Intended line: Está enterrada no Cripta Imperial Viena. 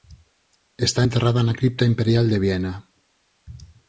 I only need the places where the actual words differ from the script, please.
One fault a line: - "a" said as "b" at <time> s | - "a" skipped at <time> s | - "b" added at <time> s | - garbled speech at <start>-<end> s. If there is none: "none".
- "no" said as "na" at 1.4 s
- "de" added at 2.3 s